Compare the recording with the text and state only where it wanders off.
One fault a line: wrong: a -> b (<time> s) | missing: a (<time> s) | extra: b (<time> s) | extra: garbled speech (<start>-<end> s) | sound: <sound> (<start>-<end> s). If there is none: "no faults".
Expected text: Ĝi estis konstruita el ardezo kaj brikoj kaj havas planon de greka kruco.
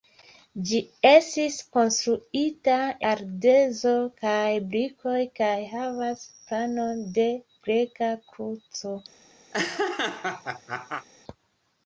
missing: el (2.8 s)
sound: laugh (9.5-11.1 s)